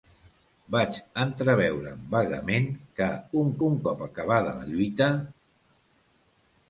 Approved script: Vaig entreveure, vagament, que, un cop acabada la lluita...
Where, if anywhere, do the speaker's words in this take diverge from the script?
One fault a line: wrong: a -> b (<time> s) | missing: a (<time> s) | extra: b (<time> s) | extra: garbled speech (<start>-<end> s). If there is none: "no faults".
extra: un (3.7 s)